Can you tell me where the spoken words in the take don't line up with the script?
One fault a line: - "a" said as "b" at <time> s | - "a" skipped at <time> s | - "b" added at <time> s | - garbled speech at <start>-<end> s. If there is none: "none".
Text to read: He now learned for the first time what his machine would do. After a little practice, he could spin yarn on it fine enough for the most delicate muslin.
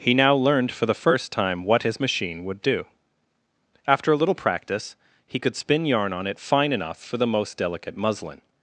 none